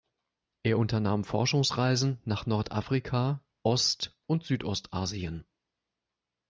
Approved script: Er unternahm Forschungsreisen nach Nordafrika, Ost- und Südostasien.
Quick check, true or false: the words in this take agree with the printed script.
true